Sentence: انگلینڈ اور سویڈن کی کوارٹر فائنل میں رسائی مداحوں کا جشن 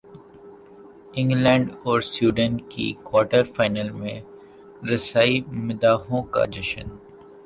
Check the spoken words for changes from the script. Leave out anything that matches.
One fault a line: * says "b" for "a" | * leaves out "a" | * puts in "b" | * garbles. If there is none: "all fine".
all fine